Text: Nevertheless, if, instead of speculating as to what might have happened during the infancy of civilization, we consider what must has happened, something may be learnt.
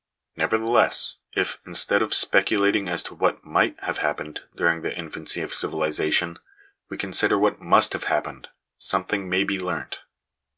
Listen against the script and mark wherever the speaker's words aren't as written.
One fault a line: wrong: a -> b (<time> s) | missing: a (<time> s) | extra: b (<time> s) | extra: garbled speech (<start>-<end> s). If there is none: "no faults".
wrong: has -> have (7.9 s)